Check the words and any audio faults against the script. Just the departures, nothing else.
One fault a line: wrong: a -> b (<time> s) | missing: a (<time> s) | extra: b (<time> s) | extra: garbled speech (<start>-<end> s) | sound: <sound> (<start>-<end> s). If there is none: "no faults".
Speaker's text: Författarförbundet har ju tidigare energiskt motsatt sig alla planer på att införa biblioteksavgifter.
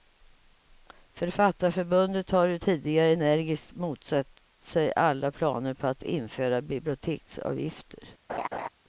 sound: laugh (8.3-8.7 s)